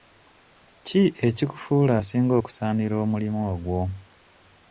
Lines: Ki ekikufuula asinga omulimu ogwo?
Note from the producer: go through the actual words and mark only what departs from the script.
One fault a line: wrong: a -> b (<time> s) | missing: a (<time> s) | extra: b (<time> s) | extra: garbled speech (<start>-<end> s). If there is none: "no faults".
extra: okusaanira (2.4 s)